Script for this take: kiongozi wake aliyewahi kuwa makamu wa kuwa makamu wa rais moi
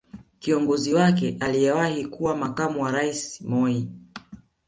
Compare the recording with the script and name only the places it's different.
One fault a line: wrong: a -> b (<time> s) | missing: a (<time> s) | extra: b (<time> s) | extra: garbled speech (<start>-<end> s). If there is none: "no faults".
missing: kuwa makamu wa (2.9 s)